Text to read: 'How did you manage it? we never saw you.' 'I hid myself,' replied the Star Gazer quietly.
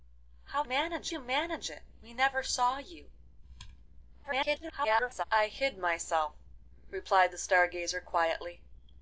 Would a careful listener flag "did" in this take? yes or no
yes